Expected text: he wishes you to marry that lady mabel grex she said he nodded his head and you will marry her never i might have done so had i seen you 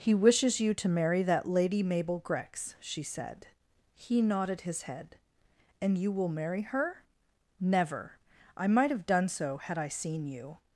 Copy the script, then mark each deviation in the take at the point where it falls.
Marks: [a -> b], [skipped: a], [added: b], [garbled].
he wishes you to marry that lady mabel grex she said he nodded his head and you will marry her never i might have done so had i seen you